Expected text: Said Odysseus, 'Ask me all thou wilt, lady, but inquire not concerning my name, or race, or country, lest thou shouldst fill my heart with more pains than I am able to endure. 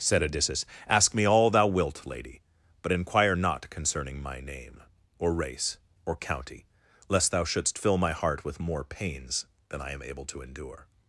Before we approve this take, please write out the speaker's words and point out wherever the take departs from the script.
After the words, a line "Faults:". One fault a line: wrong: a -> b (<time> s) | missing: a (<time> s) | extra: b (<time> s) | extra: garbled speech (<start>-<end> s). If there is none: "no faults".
Said Odysseus, 'Ask me all thou wilt, lady, but inquire not concerning my name, or race, or county, lest thou shouldst fill my heart with more pains than I am able to endure.
Faults:
wrong: country -> county (6.2 s)